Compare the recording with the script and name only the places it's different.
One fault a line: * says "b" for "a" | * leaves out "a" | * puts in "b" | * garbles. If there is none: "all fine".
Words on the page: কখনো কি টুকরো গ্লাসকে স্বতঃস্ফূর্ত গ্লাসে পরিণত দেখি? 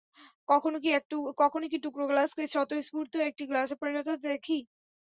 * puts in "একটি"
* puts in "হতে"